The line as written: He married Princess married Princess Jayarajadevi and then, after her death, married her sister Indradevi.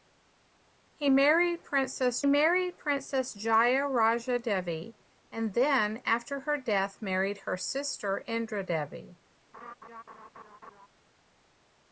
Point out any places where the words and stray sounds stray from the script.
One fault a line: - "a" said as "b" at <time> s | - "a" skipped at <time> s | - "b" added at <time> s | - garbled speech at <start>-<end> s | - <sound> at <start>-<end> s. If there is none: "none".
- laugh at 9.5-10.9 s